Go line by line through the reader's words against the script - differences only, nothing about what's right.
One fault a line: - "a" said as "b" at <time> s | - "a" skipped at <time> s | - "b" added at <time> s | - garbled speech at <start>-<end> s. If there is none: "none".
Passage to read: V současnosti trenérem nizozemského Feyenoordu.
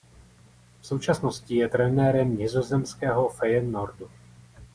- "je" added at 1.6 s